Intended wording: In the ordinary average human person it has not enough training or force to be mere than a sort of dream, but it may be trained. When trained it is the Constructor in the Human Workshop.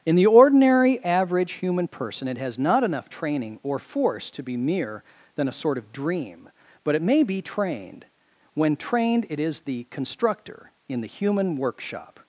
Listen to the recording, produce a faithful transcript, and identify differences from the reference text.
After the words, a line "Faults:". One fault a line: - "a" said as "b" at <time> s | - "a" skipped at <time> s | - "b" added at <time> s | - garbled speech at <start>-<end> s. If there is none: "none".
In the ordinary average human person it has not enough training or force to be mere than a sort of dream, but it may be trained. When trained it is the Constructor in the Human Workshop.
Faults:
none